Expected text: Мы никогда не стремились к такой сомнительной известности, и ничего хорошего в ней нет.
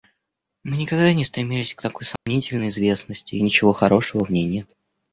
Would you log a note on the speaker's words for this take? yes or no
no